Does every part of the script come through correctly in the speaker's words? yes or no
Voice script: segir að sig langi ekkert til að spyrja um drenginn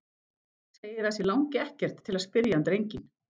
yes